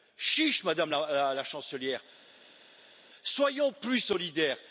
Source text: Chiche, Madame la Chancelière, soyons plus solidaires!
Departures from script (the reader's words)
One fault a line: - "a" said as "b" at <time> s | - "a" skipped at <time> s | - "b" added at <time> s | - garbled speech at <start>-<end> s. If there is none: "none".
none